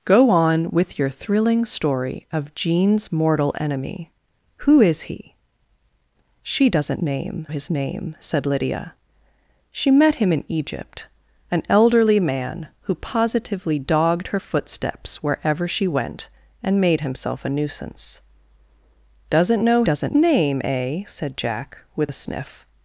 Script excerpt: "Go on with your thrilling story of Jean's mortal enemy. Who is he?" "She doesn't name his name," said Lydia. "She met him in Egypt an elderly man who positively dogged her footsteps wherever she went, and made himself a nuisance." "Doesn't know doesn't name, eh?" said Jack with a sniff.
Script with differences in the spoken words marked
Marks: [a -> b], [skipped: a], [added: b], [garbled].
"Go on with your thrilling story of Jean's mortal enemy. Who is he?" "She doesn't name his name," said Lydia. "She met him in Egypt an elderly man who positively dogged her footsteps wherever she went, and made himself a nuisance." "Doesn't know doesn't name, eh?" said Jack with a sniff.